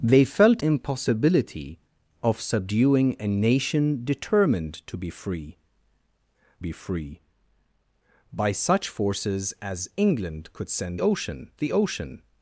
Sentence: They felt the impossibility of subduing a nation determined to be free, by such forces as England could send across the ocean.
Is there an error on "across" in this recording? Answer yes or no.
yes